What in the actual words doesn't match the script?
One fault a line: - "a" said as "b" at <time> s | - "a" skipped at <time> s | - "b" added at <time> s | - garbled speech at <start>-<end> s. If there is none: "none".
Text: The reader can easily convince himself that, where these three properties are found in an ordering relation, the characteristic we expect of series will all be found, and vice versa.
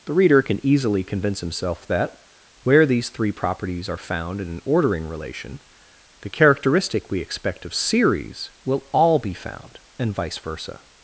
none